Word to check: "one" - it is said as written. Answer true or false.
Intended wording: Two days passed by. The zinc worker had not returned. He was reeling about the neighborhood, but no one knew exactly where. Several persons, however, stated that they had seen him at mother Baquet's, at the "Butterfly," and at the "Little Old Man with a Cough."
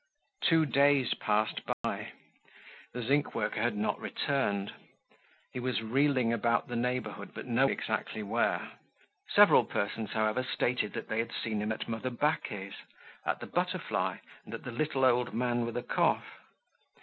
false